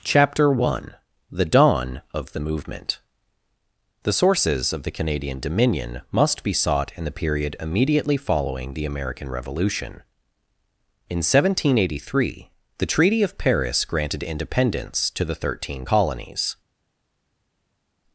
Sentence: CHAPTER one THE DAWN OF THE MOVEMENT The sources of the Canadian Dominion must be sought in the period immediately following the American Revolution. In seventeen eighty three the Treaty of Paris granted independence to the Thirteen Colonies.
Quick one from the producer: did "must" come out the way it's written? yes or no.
yes